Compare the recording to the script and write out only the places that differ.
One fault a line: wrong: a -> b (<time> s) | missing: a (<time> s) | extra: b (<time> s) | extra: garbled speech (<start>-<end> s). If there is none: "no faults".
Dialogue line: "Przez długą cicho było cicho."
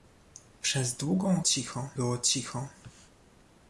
no faults